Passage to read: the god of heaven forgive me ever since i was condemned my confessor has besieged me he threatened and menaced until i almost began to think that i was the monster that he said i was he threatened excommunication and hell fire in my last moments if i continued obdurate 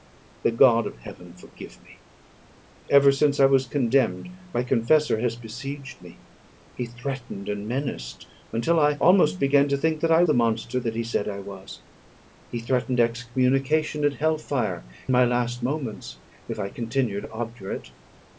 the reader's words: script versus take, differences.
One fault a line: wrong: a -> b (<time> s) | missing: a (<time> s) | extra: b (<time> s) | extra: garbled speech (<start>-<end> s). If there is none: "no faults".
missing: was (10.2 s)
missing: in (14.9 s)